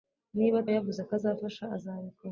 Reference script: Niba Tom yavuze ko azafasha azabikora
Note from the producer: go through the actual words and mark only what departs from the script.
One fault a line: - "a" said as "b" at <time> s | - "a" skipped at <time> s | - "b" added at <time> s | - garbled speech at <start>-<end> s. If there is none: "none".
- "Tom" skipped at 0.6 s